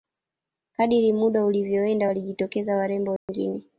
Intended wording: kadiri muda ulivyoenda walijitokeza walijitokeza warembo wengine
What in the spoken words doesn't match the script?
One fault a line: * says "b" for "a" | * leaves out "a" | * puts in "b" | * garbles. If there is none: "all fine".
* leaves out "walijitokeza"